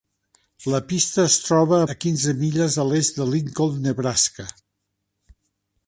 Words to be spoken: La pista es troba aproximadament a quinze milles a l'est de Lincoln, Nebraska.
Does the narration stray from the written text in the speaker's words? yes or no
yes